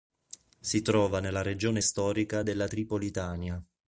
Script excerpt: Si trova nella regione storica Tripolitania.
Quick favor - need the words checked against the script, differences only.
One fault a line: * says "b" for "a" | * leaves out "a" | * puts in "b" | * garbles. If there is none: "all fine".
* puts in "della"